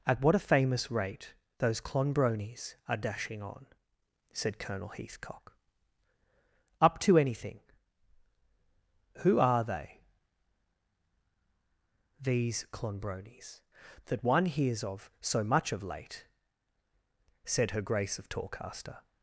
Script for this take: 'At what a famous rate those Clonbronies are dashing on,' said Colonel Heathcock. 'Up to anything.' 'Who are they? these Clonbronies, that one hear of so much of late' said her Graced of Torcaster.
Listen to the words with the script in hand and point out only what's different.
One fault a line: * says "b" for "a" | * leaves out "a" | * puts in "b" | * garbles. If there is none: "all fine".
* says "hears" for "hear"
* says "Grace" for "Graced"